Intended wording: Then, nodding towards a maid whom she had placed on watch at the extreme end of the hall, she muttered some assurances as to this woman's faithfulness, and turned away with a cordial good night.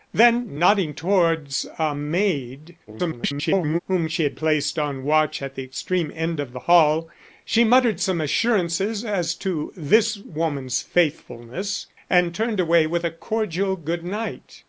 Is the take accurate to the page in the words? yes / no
no